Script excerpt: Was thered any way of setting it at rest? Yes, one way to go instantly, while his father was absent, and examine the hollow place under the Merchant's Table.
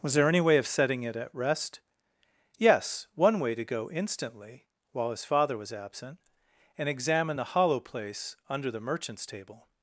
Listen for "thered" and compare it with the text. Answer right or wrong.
wrong